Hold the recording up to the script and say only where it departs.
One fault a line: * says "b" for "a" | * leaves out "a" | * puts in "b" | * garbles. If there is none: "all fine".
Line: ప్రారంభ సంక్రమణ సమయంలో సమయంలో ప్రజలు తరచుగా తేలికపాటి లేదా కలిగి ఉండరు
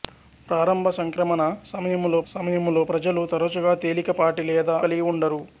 all fine